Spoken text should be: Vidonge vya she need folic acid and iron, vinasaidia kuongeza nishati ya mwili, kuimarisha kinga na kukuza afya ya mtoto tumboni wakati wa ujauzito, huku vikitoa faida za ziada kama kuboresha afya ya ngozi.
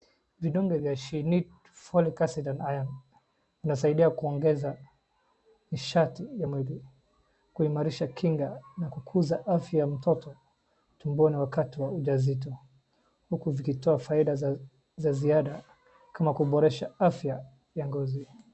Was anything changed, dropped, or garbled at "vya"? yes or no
no